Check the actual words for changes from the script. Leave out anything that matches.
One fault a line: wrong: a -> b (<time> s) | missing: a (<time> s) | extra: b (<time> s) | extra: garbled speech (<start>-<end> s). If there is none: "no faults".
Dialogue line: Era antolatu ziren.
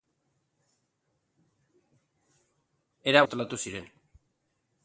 no faults